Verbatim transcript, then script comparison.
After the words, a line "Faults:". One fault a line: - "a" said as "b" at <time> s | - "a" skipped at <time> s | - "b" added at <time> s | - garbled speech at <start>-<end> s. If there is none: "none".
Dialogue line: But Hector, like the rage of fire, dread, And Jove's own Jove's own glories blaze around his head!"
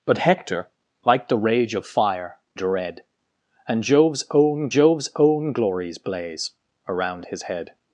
But Hector, like the rage of fire, dread, And Jove's own Jove's own glories blaze around his head!"
Faults:
none